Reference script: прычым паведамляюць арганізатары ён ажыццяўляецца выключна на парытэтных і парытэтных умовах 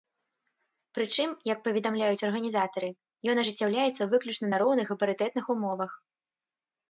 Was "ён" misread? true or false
false